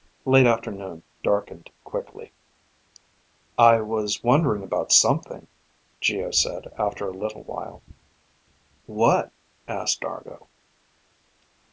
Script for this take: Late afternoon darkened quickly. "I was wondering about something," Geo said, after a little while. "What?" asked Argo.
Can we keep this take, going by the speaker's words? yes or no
yes